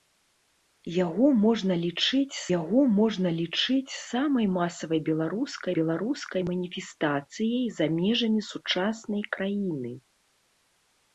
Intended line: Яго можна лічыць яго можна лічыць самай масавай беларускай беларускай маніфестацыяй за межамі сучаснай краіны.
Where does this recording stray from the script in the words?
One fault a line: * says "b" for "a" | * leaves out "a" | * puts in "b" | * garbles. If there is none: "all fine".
all fine